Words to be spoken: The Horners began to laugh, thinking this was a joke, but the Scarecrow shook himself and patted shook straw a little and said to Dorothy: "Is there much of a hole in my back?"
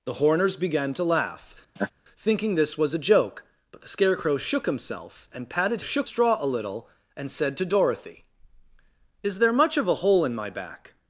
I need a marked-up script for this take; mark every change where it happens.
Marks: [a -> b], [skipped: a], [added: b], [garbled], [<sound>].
The Horners began to laugh, [laugh] thinking this was a joke, but the Scarecrow shook himself and patted shook straw a little and said to Dorothy: "Is there much of a hole in my back?"